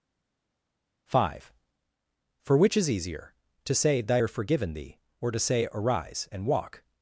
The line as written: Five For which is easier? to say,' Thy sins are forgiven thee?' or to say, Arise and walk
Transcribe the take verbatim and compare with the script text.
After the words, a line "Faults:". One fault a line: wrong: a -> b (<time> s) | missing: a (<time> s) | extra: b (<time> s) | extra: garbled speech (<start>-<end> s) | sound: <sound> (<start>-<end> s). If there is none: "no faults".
Five For which is easier? to say,' Thy are forgiven thee?' or to say, Arise and walk
Faults:
missing: sins (4.2 s)